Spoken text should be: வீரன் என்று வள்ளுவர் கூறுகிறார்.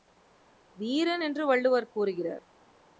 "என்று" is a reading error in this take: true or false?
false